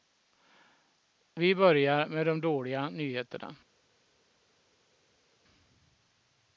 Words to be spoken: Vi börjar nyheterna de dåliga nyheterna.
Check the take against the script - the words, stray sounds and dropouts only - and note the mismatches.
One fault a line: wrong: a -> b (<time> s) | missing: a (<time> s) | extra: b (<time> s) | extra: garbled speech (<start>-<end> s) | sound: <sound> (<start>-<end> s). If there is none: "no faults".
wrong: nyheterna -> med (2.1 s)